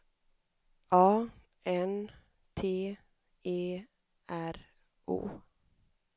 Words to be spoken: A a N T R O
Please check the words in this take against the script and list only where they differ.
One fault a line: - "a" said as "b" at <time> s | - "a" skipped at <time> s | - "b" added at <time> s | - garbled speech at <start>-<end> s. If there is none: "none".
- "a" skipped at 1.3 s
- "E" added at 3.4 s